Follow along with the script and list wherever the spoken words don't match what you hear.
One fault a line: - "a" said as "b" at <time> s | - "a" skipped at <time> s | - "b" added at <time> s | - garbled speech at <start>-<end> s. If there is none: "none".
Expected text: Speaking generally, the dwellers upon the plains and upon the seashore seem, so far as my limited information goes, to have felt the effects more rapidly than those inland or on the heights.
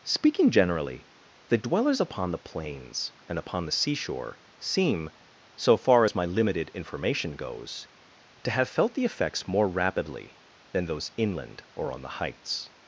none